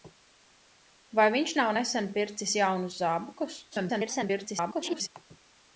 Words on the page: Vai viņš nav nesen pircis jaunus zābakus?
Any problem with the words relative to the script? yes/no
yes